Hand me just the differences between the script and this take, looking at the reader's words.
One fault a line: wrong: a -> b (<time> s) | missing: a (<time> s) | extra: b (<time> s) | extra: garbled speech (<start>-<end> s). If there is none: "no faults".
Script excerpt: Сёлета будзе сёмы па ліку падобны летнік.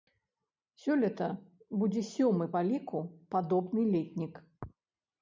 no faults